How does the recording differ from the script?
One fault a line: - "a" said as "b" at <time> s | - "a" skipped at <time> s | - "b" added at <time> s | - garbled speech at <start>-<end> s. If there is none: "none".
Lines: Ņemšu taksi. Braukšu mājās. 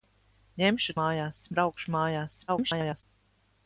- "taksi" said as "mājās" at 1.0 s
- garbled speech at 2.5-3.0 s